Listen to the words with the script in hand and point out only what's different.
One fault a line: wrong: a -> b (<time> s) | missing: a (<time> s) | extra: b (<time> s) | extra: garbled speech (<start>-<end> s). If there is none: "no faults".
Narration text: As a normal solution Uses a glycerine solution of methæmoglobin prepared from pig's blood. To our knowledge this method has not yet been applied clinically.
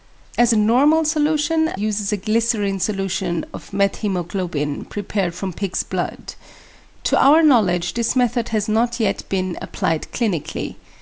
no faults